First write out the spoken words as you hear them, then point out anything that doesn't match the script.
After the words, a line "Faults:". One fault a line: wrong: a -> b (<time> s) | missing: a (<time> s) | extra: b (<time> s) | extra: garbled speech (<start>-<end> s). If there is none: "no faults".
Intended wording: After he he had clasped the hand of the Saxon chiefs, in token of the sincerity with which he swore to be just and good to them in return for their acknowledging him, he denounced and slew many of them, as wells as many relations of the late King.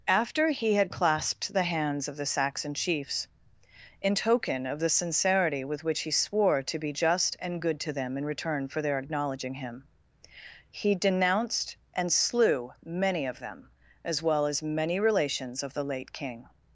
After he had clasped the hands of the Saxon chiefs, in token of the sincerity with which he swore to be just and good to them in return for their acknowledging him, he denounced and slew many of them, as well as many relations of the late King.
Faults:
missing: he (0.7 s)
wrong: hand -> hands (1.6 s)
wrong: wells -> well (14.2 s)